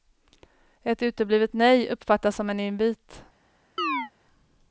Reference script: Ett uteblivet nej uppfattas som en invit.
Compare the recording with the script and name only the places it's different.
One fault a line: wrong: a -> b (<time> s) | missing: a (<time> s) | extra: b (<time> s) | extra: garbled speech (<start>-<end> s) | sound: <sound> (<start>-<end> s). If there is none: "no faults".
sound: chirp (3.8-4.1 s)